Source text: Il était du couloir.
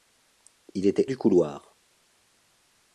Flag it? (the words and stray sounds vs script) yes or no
no